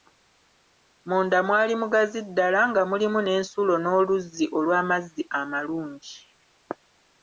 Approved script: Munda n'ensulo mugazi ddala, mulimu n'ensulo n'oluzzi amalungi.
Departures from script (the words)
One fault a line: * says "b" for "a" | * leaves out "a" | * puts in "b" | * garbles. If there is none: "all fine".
* says "mwali" for "n'ensulo"
* puts in "nga"
* puts in "olw'amazzi"